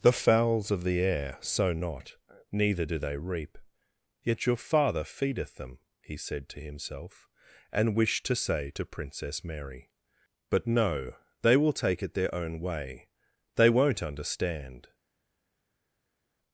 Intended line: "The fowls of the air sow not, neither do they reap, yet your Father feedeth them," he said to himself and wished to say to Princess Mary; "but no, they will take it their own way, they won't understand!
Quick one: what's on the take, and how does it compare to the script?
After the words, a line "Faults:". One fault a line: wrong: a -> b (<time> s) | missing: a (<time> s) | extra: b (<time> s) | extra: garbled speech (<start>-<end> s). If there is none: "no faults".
"The fowls of the air sow not, neither do they reap, yet your Father feedeth them," he said to himself and wished to say to Princess Mary; "but no, they will take it their own way, they won't understand!
Faults:
no faults